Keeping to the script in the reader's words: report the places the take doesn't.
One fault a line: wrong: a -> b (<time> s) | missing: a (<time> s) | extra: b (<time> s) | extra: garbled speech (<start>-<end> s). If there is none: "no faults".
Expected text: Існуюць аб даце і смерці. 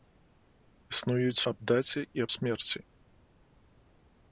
no faults